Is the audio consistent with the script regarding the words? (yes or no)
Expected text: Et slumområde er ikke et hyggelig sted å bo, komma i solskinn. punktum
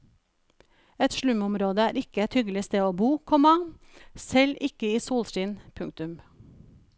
no